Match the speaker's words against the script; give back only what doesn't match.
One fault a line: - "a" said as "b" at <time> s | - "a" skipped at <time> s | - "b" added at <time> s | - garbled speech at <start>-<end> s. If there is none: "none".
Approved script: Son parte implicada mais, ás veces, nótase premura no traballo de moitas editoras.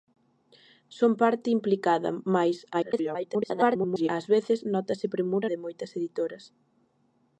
- garbled speech at 2.7-4.1 s
- "no traballo" skipped at 5.5 s